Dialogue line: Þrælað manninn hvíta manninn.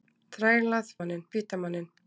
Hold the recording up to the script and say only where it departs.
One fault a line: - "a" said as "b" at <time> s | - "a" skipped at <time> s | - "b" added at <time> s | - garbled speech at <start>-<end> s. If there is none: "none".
none